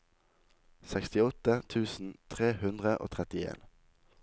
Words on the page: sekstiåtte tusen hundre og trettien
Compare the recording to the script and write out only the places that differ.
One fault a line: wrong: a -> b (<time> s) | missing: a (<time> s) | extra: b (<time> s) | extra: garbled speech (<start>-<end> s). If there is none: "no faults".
extra: tre (2.4 s)